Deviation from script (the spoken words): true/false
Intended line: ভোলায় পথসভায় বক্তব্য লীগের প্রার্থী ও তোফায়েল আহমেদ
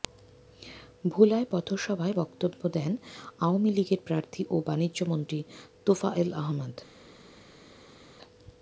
true